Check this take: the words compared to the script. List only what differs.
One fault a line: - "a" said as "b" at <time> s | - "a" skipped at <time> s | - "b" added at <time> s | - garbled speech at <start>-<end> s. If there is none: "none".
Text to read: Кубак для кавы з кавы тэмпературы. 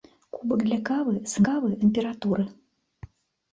none